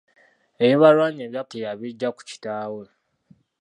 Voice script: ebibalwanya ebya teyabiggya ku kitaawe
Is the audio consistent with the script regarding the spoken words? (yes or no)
yes